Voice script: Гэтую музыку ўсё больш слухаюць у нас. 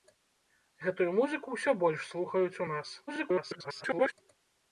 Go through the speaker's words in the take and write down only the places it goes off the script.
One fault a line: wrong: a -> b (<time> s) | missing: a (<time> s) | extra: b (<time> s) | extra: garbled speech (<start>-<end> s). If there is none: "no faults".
extra: garbled speech (3.1-4.1 s)